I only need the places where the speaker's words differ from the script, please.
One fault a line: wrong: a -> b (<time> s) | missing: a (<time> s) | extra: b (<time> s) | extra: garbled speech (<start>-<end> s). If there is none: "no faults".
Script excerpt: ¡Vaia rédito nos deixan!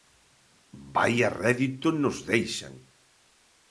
no faults